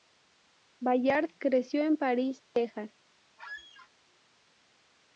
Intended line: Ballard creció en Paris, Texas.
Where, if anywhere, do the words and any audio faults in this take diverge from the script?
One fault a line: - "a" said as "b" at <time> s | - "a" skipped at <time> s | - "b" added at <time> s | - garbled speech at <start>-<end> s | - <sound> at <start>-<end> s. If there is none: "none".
- squeak at 3.4-3.9 s